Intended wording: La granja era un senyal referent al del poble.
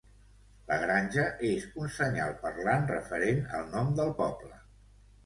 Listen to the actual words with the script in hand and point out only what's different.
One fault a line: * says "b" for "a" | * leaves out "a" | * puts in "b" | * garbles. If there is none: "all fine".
* says "és" for "era"
* puts in "parlant"
* puts in "nom"